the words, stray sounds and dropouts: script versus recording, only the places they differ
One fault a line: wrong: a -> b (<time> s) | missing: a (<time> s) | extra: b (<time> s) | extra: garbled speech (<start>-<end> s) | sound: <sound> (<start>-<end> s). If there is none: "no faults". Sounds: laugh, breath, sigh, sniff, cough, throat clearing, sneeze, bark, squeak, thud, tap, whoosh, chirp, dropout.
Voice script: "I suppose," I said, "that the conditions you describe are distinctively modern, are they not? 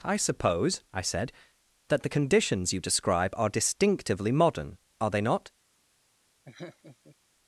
sound: laugh (6.5-7.2 s)